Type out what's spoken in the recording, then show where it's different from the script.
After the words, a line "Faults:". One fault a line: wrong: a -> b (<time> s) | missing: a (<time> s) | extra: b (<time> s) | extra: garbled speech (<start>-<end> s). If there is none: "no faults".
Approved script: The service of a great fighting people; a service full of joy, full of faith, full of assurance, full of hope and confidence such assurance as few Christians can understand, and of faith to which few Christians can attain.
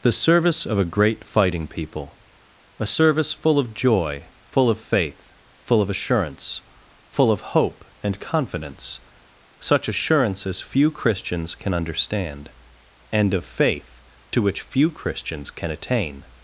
The service of a great fighting people; a service full of joy, full of faith, full of assurance, full of hope and confidence such assurance as few Christians can understand, and of faith to which few Christians can attain.
Faults:
no faults